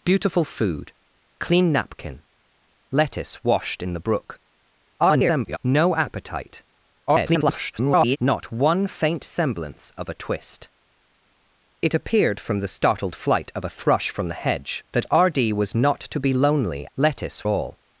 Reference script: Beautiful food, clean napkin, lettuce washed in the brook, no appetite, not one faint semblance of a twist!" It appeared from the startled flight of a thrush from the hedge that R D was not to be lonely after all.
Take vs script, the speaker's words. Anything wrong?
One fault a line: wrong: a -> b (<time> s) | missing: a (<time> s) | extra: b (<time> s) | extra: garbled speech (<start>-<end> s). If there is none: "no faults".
extra: garbled speech (5.0-5.6 s)
extra: garbled speech (7.1-8.2 s)
wrong: after -> lettuce (17.0 s)